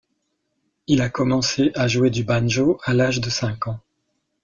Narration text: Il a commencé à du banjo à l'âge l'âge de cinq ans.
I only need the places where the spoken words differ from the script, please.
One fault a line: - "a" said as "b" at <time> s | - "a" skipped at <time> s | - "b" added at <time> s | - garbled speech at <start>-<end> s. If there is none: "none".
- "jouer" added at 1.9 s
- "l'âge" skipped at 3.2 s